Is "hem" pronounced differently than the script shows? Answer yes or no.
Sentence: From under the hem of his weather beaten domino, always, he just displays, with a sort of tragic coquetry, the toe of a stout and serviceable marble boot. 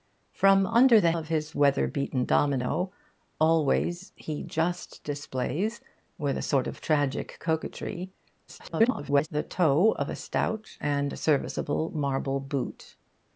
yes